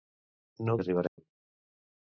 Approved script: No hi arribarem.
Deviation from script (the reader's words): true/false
false